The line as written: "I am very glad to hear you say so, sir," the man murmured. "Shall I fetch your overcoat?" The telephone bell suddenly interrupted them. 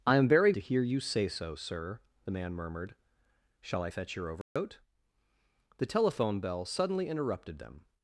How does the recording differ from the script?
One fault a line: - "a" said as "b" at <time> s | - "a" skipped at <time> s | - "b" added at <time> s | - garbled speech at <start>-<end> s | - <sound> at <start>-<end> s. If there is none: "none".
- "glad" skipped at 0.5 s
- dropout at 4.4-4.6 s